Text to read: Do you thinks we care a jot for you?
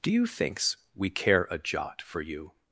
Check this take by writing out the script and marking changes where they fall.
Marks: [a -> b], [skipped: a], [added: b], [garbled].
Do you thinks we care a jot for you?